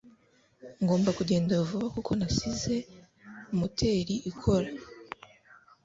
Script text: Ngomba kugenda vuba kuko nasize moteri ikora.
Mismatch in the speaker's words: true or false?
false